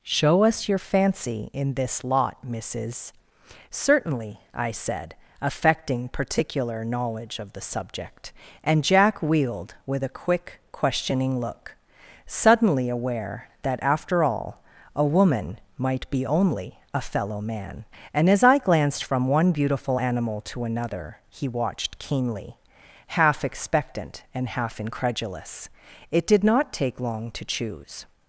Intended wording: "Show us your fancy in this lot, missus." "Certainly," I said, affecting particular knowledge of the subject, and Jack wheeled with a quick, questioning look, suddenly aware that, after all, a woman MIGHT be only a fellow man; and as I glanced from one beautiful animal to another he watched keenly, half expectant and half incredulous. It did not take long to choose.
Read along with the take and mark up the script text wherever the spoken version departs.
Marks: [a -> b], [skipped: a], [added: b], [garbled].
"Show us your fancy in this lot, missus." "Certainly," I said, affecting particular knowledge of the subject, and Jack wheeled with a quick, questioning look, suddenly aware that, after all, a woman MIGHT be only a fellow man; and as I glanced from one beautiful animal to another he watched keenly, half expectant and half incredulous. It did not take long to choose.